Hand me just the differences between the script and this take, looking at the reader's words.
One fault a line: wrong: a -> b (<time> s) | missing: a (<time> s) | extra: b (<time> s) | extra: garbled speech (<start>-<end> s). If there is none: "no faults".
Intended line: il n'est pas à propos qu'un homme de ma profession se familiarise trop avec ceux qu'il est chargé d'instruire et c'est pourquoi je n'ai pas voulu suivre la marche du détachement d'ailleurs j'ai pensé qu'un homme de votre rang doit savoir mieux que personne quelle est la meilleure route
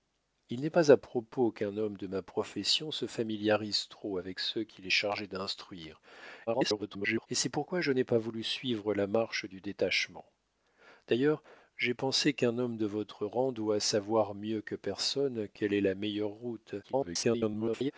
extra: garbled speech (6.5-7.3 s)
extra: garbled speech (16.8-17.9 s)